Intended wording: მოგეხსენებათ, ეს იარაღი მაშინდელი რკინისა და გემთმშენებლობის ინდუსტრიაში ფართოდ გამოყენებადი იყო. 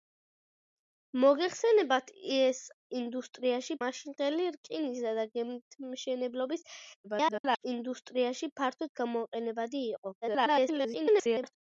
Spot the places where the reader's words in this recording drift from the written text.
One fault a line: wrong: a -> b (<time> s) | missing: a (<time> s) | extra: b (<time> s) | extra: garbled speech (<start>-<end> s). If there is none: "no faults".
wrong: იარაღი -> ინდუსტრიაში (3.0 s)
extra: garbled speech (7.0-7.6 s)
extra: garbled speech (10.2-11.6 s)